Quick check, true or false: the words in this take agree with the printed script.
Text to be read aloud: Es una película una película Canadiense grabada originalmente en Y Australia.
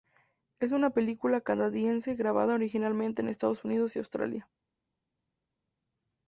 false